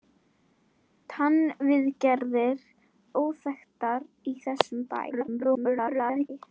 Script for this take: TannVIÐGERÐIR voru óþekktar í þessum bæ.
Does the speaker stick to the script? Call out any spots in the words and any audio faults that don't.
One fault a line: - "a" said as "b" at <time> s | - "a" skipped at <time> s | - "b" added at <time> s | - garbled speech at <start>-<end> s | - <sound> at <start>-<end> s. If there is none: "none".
- "voru" skipped at 2.6 s
- garbled speech at 5.1-6.3 s